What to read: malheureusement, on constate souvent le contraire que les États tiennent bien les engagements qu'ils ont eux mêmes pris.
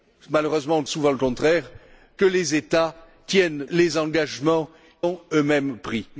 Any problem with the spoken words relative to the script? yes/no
yes